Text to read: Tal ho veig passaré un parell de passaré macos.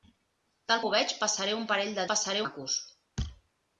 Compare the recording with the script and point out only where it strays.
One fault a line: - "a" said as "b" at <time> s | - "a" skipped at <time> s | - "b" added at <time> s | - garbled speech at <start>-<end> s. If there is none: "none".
none